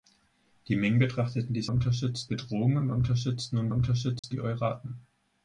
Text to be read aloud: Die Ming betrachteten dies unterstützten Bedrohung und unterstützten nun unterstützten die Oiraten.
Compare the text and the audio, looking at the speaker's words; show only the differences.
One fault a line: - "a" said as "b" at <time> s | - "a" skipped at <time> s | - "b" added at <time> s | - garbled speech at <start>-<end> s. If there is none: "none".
none